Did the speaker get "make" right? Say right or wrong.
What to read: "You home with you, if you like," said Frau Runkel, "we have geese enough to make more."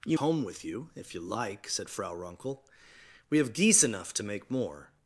right